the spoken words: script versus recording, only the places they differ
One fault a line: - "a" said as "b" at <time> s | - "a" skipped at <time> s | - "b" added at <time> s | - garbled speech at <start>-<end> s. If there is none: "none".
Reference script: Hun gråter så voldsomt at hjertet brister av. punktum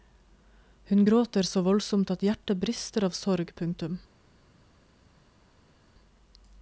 - "sorg" added at 3.2 s